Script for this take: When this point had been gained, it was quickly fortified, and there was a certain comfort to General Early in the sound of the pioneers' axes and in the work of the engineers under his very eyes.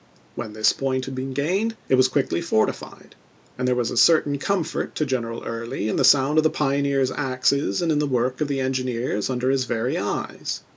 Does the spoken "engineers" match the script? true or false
true